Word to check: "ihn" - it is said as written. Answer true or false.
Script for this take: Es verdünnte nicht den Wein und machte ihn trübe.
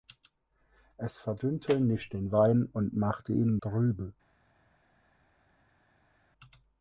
true